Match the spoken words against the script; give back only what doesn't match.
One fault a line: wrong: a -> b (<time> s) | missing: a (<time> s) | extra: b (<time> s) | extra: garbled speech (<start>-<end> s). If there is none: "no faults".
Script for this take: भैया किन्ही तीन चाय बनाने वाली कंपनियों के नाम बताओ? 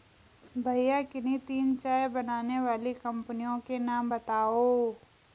no faults